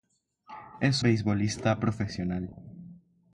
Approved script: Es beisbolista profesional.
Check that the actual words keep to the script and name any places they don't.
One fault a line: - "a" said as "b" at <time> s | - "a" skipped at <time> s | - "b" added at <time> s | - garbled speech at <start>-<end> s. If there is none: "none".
none